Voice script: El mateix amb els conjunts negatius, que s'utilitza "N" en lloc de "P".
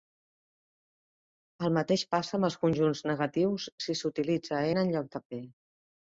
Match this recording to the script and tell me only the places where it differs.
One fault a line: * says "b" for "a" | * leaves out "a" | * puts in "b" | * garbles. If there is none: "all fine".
* puts in "passa"
* says "si" for "que"